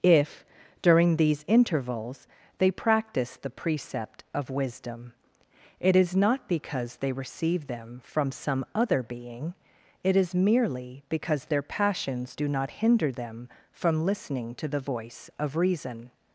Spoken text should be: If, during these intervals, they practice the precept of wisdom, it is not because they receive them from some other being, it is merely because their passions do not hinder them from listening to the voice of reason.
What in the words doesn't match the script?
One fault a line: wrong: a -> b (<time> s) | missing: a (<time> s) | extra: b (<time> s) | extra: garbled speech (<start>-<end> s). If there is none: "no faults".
no faults